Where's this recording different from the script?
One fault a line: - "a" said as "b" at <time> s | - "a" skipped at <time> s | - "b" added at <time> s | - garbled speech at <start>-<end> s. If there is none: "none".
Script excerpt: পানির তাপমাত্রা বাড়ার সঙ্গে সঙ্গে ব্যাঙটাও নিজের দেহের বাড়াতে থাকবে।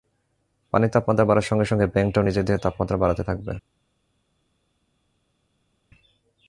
- "তাপমাত্রা" added at 2.6 s